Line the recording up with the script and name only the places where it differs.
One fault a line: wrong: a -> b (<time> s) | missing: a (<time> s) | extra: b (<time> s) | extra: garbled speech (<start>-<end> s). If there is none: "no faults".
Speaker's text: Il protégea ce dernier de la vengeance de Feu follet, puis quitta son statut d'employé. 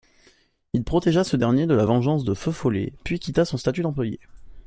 no faults